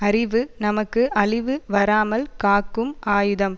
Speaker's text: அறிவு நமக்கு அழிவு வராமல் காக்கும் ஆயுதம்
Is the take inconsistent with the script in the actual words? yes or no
no